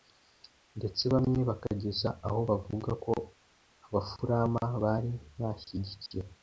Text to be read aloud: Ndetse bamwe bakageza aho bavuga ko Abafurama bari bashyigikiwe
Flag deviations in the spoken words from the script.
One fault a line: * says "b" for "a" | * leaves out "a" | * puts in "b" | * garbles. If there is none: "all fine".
all fine